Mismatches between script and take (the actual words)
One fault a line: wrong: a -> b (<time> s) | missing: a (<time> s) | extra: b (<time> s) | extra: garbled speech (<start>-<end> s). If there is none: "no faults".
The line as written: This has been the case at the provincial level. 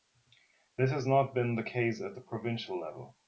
extra: not (1.1 s)